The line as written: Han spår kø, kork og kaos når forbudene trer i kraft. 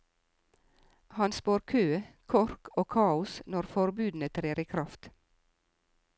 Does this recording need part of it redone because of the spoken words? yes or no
no